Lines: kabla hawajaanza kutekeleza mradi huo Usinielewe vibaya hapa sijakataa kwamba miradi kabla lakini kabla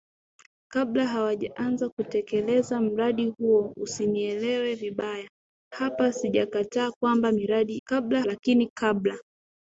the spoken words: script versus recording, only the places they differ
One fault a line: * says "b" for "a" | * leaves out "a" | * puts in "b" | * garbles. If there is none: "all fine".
all fine